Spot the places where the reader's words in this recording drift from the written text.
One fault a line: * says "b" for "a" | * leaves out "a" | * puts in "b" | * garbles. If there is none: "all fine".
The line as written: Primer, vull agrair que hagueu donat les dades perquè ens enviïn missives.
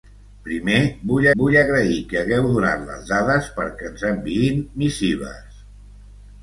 * puts in "vull"